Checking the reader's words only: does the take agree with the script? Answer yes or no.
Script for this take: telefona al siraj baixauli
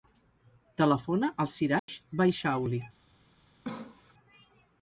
yes